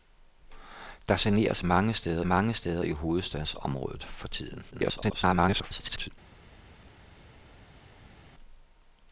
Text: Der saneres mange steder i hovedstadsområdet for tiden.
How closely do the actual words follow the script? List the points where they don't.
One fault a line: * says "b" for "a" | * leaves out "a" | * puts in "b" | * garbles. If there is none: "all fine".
* puts in "mange steder"
* garbles